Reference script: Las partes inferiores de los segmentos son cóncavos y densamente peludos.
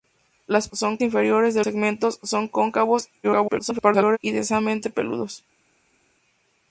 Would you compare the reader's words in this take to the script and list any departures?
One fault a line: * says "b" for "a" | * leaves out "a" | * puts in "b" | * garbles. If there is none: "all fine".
* says "son" for "partes"
* leaves out "los"
* garbles